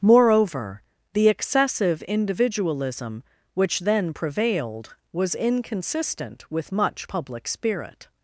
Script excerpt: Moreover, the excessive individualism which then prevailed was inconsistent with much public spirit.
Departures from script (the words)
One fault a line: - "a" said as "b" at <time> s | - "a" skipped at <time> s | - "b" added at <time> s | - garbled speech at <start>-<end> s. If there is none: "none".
none